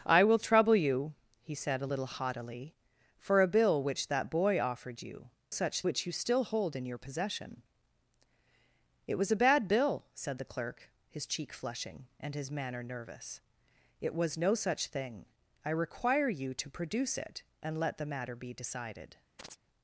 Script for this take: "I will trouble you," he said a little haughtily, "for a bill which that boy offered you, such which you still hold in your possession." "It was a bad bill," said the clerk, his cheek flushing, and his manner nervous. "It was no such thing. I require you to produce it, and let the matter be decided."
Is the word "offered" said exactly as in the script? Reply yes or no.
yes